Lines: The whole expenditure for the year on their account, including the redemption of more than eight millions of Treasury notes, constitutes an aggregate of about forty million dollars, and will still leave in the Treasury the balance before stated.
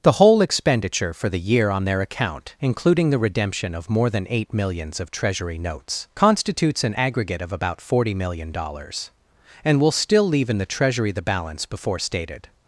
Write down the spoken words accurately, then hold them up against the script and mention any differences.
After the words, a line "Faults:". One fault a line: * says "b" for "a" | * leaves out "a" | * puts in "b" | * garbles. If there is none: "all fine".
The whole expenditure for the year on their account, including the redemption of more than eight millions of Treasury notes, constitutes an aggregate of about forty million dollars, and will still leave in the Treasury the balance before stated.
Faults:
all fine